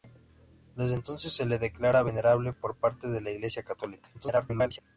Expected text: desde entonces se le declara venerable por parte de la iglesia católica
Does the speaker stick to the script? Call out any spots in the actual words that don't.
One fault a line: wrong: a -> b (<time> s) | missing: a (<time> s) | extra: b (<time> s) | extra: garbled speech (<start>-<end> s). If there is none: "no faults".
extra: garbled speech (4.1-4.8 s)